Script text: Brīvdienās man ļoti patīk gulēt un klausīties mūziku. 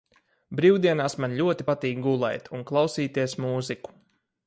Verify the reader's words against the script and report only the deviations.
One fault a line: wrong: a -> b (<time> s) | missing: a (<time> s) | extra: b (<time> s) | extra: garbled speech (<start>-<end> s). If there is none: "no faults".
no faults